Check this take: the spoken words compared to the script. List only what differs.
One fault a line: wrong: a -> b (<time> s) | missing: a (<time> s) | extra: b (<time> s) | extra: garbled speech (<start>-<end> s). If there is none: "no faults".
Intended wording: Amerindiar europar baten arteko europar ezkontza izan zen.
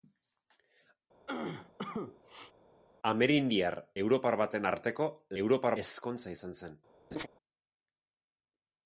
no faults